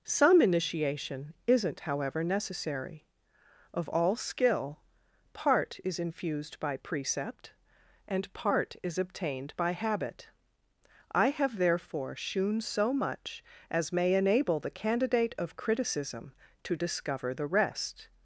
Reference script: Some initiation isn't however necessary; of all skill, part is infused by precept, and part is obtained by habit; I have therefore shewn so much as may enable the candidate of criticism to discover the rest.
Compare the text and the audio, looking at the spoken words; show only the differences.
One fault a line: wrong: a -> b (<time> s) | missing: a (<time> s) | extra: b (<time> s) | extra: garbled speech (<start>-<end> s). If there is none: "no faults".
no faults